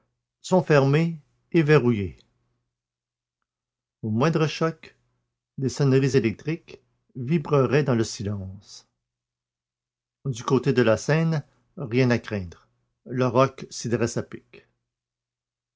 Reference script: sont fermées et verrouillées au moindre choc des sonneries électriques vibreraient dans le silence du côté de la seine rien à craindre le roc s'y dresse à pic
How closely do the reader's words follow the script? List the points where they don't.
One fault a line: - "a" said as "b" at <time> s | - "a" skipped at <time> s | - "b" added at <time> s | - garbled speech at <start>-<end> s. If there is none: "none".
none